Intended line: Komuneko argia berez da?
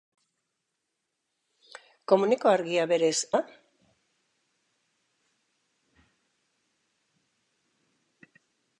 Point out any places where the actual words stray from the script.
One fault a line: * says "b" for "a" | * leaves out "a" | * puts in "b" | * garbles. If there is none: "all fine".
all fine